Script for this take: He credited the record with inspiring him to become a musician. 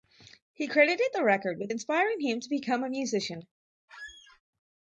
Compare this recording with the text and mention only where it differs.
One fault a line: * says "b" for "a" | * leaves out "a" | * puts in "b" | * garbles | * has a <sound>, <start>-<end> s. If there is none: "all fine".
* has a squeak, 3.9-4.4 s